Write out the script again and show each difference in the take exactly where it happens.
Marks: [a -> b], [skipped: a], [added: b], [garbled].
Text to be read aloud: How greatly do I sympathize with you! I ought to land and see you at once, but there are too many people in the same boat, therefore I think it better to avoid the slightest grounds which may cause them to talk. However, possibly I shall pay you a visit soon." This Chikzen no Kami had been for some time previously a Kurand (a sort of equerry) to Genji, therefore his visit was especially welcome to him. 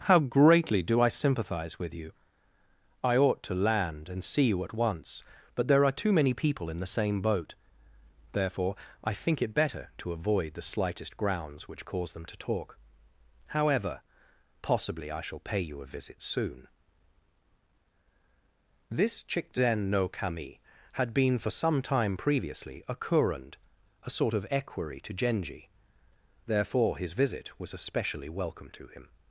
How greatly do I sympathize with you! I ought to land and see you at once, but there are too many people in the same boat, therefore I think it better to avoid the slightest grounds which [skipped: may] cause them to talk. However, possibly I shall pay you a visit soon." This Chikzen no Kami had been for some time previously a Kurand (a sort of equerry) to Genji, therefore his visit was especially welcome to him.